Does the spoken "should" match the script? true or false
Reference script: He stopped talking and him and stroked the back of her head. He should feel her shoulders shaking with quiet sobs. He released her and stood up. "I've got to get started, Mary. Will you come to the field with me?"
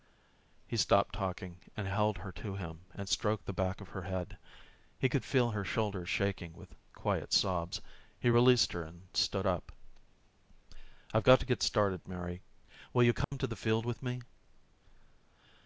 false